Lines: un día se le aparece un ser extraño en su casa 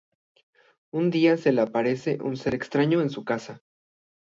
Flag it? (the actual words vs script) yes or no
no